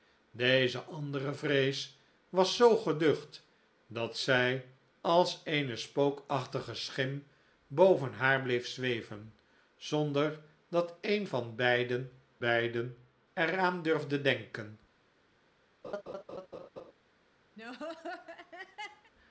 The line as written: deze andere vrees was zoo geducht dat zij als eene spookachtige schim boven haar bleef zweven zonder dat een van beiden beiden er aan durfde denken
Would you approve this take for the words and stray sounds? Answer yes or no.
no